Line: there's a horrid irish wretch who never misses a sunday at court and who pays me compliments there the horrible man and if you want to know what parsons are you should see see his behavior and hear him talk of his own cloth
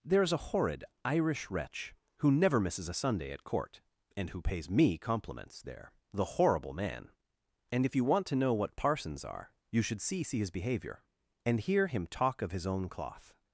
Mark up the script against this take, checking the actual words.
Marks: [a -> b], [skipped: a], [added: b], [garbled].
there's a horrid irish wretch who never misses a sunday at court and who pays me compliments there the horrible man and if you want to know what parsons are you should see see his behavior and hear him talk of his own cloth